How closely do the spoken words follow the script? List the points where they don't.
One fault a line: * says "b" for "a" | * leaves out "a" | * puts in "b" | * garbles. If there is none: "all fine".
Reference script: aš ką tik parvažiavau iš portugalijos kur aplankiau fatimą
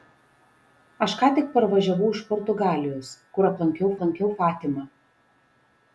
* puts in "aplankiau"